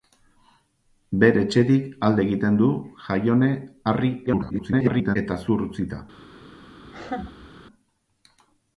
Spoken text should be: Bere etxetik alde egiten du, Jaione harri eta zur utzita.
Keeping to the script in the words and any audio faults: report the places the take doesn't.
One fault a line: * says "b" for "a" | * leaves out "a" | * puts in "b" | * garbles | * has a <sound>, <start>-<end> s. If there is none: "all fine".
* garbles
* has a laugh, 6.8-7.5 s